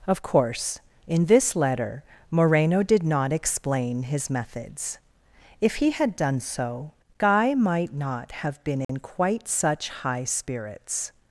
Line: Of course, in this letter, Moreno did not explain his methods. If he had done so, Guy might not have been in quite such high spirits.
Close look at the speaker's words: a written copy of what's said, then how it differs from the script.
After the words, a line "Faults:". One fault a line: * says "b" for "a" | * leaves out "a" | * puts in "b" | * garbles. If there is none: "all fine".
Of course, in this letter, Moreno did not explain his methods. If he had done so, Guy might not have been in quite such high spirits.
Faults:
all fine